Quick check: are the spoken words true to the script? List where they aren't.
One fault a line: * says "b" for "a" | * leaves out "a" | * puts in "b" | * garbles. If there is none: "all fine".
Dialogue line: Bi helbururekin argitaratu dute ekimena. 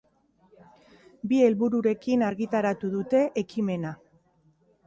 all fine